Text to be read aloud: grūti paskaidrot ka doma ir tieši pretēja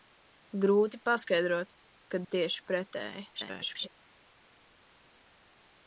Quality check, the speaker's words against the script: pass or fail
fail